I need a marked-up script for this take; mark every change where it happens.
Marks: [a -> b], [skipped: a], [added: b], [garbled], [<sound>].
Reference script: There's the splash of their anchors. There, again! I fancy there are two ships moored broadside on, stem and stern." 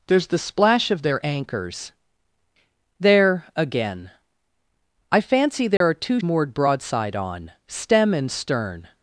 There's the splash of their anchors. There, again! I fancy there [dropout] are two [skipped: ships] moored broadside on, stem and stern."